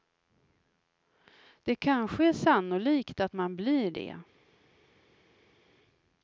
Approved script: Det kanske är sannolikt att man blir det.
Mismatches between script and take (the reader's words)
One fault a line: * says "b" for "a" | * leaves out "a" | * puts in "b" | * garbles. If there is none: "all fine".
all fine